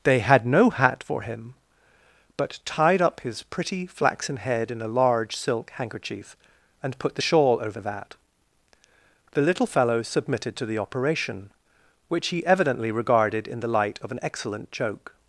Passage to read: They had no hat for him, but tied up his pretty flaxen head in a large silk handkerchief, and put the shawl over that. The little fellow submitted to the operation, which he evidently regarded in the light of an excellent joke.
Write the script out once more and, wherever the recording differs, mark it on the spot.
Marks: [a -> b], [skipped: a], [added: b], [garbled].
They had no hat for him, but tied up his pretty flaxen head in a large silk handkerchief, and put the shawl over that. The little fellow submitted to the operation, which he evidently regarded in the light of an excellent joke.